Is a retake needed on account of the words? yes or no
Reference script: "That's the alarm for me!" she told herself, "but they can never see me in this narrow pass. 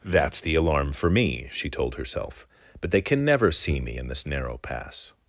no